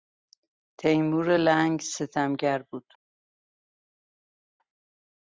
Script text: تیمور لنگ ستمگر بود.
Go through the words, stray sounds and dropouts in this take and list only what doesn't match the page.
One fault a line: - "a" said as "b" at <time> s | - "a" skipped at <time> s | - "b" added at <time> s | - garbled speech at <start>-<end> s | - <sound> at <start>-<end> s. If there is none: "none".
none